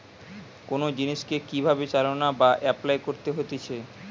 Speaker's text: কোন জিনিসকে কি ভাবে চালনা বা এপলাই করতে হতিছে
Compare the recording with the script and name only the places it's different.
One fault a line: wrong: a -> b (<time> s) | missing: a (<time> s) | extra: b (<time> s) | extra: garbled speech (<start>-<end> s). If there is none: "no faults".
no faults